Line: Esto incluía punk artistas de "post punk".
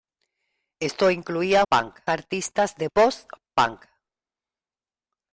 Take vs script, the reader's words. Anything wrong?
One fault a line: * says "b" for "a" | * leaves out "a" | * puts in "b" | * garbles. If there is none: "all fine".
all fine